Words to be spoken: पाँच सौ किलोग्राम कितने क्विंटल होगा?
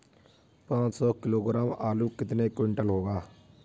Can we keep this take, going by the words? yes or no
no